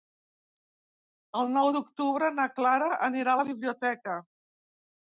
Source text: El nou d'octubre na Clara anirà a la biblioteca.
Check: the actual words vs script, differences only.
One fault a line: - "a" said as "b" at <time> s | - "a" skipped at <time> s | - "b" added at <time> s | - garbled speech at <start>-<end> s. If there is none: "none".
none